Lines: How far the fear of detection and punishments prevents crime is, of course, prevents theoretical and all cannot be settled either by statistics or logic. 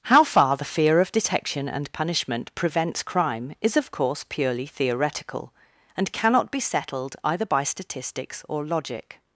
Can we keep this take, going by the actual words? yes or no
no